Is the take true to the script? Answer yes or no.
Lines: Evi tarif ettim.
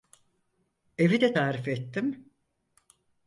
no